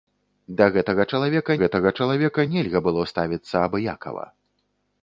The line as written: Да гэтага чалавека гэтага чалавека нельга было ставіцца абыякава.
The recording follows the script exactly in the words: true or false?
true